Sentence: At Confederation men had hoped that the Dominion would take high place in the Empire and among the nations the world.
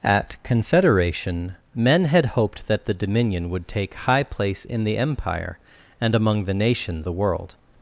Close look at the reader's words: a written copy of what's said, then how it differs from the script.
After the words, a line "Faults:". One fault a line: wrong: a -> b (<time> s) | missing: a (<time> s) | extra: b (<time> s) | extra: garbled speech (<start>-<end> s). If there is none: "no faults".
At Confederation men had hoped that the Dominion would take high place in the Empire and among the nations the world.
Faults:
no faults